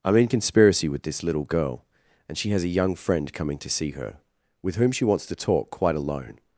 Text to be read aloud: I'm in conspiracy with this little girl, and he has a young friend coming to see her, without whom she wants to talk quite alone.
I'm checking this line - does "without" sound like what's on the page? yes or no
no